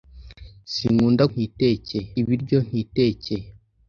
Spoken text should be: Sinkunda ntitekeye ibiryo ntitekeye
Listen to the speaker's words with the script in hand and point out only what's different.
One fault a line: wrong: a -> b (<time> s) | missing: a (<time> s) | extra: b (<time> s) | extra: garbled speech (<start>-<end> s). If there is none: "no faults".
no faults